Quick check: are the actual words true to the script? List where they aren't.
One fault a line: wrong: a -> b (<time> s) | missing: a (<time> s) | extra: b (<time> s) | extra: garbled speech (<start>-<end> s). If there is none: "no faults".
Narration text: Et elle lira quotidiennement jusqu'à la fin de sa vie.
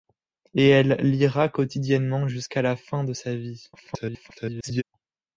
extra: garbled speech (3.7-4.8 s)